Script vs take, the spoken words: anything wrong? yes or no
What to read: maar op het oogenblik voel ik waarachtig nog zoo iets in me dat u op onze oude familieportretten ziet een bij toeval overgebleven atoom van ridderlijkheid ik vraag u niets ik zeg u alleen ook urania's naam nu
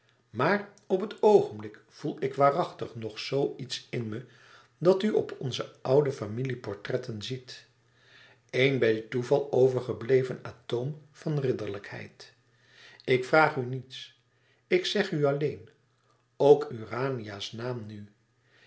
no